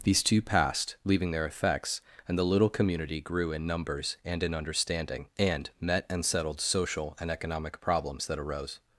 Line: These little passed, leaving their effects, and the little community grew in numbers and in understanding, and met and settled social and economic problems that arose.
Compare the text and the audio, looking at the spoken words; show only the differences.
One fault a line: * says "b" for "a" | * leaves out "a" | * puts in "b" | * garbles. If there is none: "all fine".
* says "two" for "little"